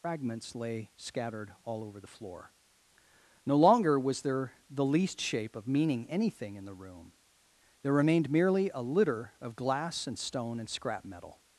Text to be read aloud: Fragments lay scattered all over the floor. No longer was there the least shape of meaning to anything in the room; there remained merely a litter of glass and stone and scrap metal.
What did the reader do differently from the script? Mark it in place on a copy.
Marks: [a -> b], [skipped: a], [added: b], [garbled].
Fragments lay scattered all over the floor. No longer was there the least shape of meaning [skipped: to] anything in the room; there remained merely a litter of glass and stone and scrap metal.